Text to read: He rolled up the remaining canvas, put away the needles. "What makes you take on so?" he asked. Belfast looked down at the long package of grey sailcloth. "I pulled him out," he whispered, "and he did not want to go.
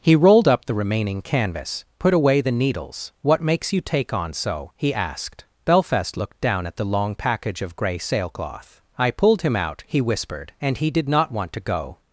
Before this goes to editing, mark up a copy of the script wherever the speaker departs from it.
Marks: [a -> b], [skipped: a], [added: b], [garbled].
He rolled up the remaining canvas, put away the needles. "What makes you take on so?" he asked. Belfast looked down at the long package of grey sailcloth. "I pulled him out," he whispered, "and he did not want to go.